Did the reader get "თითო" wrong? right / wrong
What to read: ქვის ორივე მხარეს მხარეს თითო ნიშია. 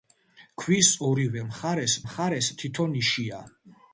right